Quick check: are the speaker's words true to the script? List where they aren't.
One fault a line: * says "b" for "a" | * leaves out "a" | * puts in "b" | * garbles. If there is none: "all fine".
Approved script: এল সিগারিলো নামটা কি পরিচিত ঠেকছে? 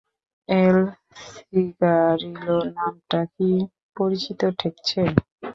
all fine